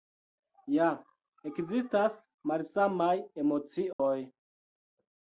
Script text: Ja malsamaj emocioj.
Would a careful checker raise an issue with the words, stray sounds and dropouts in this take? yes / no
yes